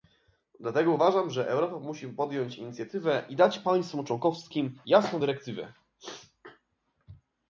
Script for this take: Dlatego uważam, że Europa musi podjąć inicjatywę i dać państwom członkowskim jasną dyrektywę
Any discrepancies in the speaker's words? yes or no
no